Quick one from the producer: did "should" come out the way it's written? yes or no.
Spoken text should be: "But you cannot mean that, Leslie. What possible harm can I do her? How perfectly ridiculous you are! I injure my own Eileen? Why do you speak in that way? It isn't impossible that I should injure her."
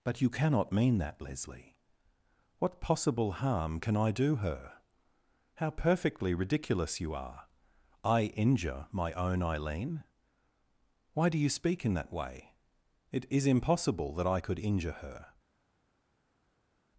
no